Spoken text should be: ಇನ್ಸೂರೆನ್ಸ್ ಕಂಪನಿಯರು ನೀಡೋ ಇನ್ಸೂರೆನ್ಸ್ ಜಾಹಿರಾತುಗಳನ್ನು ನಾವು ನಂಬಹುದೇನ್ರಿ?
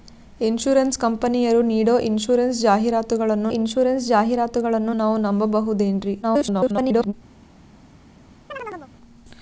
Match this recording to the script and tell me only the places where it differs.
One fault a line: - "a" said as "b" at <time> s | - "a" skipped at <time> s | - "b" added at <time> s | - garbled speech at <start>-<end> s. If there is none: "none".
- "ಇನ್ಸೂರೆನ್ಸ್ ಜಾಹಿರಾತುಗಳನ್ನು" added at 3.5 s
- garbled speech at 6.2-7.1 s